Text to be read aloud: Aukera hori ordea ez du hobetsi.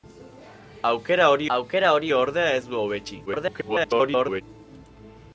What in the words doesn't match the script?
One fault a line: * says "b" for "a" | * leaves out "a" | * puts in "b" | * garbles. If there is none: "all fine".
* puts in "aukera hori"
* garbles